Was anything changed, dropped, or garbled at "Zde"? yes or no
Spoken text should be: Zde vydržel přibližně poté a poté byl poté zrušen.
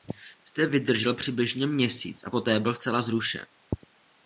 no